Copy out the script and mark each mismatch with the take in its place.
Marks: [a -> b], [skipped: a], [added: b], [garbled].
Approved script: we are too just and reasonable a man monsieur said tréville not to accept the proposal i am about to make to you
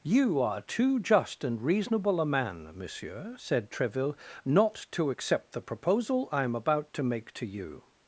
[we -> you] are too just and reasonable a man monsieur said tréville not to accept the proposal i am about to make to you